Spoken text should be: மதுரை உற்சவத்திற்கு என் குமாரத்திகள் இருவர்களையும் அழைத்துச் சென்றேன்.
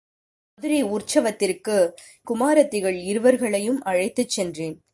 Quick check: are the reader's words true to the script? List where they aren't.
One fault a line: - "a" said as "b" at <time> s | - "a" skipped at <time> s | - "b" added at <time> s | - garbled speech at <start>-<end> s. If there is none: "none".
- "என்" skipped at 1.8 s